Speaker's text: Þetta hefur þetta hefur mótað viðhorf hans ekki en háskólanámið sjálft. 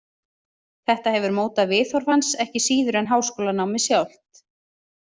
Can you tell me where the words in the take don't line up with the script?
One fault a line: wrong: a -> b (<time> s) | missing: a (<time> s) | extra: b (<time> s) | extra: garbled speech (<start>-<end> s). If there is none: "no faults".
missing: þetta hefur (1.4 s)
extra: síður (2.7 s)